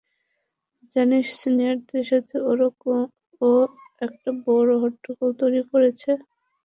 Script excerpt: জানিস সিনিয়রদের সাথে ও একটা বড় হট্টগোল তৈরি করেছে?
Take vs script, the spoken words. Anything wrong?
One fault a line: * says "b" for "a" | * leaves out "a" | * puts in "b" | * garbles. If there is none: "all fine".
all fine